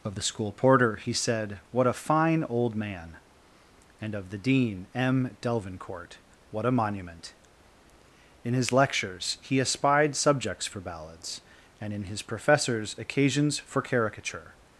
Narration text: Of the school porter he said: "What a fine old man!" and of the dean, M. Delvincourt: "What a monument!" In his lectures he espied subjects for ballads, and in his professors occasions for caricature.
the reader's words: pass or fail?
pass